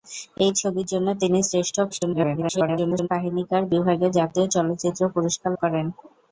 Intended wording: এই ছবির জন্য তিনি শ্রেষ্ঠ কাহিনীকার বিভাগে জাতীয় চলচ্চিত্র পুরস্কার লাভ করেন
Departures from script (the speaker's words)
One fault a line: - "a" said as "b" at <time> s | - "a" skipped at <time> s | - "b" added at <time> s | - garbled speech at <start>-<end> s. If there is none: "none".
- garbled speech at 1.9-3.1 s
- "লাভ" skipped at 5.5 s